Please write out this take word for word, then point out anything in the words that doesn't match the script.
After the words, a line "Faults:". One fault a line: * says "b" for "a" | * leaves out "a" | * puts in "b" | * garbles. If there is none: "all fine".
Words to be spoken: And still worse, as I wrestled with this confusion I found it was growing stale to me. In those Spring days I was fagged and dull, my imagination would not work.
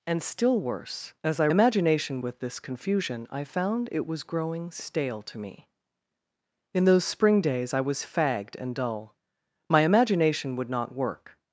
And still worse, as I imagination with this confusion I found it was growing stale to me. In those Spring days I was fagged and dull, my imagination would not work.
Faults:
* says "imagination" for "wrestled"